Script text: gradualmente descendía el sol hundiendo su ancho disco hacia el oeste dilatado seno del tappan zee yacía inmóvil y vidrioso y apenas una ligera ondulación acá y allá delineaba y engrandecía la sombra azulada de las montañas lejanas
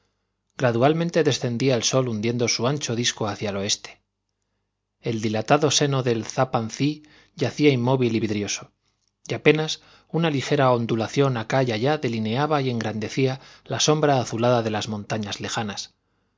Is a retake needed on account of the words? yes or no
yes